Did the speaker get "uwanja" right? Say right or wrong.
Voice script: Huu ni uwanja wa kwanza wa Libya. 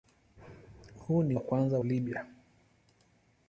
wrong